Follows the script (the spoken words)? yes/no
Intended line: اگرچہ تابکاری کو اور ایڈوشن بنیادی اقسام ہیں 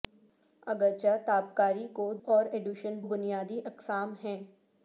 yes